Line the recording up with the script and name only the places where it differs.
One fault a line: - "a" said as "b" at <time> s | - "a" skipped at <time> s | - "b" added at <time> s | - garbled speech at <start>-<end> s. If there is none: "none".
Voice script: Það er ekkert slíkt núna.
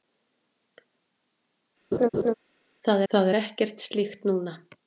- "það" added at 3.1 s